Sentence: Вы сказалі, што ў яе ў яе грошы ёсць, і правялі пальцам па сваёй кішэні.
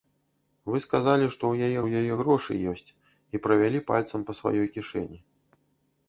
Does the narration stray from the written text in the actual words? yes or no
no